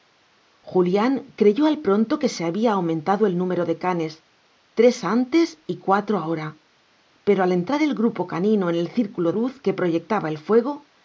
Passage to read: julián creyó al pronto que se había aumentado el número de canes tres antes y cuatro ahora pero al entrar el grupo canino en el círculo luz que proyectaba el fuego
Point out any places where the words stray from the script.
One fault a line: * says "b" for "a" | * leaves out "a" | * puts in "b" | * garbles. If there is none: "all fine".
all fine